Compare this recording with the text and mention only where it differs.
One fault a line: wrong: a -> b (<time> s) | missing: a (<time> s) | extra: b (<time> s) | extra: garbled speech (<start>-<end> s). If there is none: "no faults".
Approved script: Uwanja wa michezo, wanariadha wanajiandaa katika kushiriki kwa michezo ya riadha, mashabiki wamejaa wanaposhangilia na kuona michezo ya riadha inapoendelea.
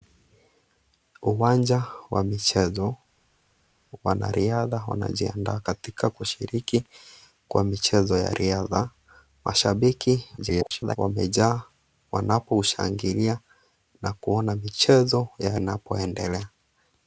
extra: garbled speech (10.4-11.0 s)
missing: riadha (15.6 s)